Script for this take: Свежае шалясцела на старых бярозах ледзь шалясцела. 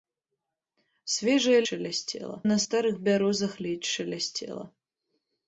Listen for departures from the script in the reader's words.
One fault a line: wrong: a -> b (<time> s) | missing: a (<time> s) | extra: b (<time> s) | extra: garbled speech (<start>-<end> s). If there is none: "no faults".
no faults